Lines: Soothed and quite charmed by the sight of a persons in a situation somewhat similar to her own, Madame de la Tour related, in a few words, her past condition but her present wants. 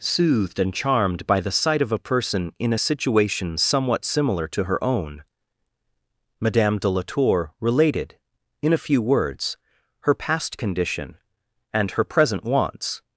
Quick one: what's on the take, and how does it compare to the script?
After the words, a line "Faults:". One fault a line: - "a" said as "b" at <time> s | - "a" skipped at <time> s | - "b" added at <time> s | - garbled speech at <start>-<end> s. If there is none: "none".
Soothed and charmed by the sight of a person in a situation somewhat similar to her own, Madame de la Tour related, in a few words, her past condition and her present wants.
Faults:
- "quite" skipped at 0.7 s
- "persons" said as "person" at 2.0 s
- "but" said as "and" at 11.7 s